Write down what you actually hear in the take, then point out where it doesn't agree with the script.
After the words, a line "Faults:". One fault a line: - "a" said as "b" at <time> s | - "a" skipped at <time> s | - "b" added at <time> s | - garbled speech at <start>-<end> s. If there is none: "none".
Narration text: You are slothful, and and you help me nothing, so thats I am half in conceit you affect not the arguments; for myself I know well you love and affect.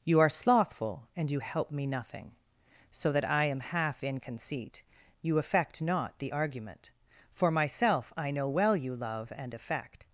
You are slothful, and you help me nothing, so that I am half in conceit you affect not the argument; for myself I know well you love and affect.
Faults:
- "and" skipped at 1.3 s
- "thats" said as "that" at 3.1 s
- "arguments" said as "argument" at 6.3 s